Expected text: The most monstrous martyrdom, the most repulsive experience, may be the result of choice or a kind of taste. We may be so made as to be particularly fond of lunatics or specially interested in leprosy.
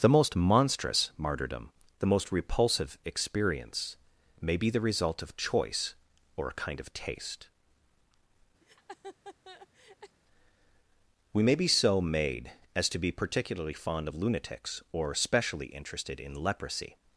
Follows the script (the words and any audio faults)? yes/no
no